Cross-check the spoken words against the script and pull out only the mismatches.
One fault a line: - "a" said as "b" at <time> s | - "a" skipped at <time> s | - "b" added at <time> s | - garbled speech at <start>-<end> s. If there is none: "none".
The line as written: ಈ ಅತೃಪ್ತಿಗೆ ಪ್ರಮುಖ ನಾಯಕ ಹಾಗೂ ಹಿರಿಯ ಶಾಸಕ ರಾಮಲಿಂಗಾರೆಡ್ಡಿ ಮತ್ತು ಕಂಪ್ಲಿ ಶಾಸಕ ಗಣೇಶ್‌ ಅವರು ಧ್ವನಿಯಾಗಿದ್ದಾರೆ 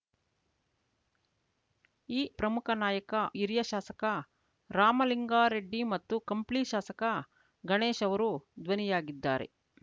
- "ಅತೃಪ್ತಿಗೆ" skipped at 2.2 s
- "ಹಾಗೂ" skipped at 3.1 s